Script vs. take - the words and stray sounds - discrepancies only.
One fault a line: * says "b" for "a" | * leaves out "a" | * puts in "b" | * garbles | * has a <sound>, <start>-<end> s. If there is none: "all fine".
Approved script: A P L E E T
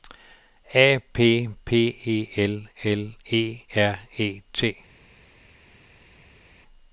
* puts in "P E"
* puts in "L"
* puts in "R"